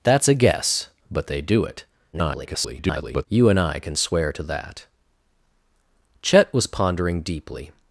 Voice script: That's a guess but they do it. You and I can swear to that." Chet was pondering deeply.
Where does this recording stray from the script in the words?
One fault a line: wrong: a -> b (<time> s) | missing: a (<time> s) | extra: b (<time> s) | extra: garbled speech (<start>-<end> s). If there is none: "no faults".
extra: garbled speech (2.1-3.3 s)